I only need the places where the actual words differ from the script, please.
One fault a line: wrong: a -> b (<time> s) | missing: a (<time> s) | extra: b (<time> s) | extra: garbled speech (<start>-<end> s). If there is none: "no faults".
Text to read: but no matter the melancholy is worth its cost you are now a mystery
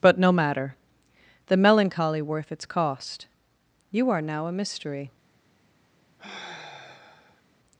missing: is (2.2 s)